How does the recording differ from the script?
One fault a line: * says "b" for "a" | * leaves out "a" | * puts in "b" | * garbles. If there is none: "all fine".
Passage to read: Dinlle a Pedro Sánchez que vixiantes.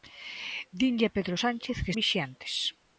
all fine